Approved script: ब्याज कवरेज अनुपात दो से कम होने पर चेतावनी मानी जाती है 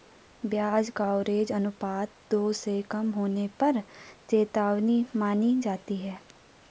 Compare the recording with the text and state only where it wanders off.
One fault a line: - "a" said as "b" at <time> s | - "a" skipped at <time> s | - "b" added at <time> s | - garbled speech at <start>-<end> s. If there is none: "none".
none